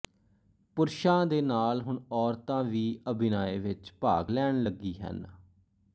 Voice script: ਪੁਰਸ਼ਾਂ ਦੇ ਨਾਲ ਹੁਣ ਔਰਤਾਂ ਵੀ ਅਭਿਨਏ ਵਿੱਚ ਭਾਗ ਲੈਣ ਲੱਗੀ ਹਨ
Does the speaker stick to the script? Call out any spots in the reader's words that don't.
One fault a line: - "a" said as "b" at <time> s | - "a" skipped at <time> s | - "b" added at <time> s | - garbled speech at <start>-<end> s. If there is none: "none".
none